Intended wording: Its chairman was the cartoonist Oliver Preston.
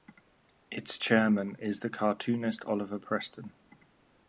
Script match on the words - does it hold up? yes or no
no